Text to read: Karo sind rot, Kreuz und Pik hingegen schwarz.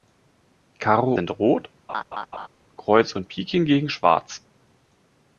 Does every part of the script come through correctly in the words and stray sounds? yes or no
no